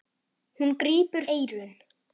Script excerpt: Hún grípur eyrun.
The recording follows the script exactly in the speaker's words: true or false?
true